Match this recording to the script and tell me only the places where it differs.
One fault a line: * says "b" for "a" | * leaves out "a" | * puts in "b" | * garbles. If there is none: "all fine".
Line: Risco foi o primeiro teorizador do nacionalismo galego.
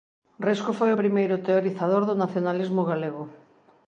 all fine